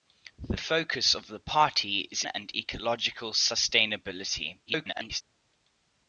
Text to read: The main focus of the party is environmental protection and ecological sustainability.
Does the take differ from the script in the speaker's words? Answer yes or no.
yes